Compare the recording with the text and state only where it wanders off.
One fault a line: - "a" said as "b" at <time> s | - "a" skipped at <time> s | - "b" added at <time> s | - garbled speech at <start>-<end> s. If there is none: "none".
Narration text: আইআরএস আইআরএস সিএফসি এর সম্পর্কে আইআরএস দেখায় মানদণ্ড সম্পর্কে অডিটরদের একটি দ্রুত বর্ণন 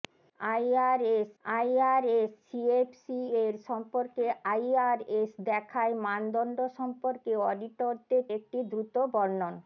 none